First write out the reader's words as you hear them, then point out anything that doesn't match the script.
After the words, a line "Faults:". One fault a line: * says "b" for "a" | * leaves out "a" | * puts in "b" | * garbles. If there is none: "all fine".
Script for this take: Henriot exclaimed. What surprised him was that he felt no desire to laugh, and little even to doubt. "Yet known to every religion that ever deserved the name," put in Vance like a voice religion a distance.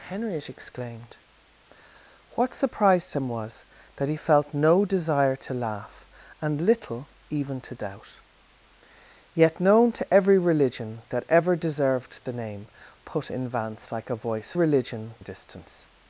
Henriot exclaimed. What surprised him was that he felt no desire to laugh, and little even to doubt. "Yet known to every religion that ever deserved the name," put in Vance like a voice religion a distance.
Faults:
all fine